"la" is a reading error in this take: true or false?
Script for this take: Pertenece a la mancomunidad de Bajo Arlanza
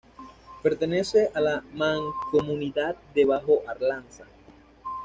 false